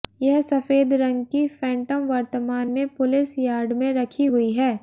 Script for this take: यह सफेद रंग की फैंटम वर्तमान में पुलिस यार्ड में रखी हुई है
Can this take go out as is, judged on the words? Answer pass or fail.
pass